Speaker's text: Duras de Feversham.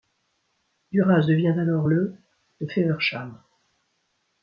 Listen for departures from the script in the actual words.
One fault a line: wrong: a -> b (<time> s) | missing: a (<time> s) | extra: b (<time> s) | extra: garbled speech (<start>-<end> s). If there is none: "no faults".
extra: devient alors le (1.3 s)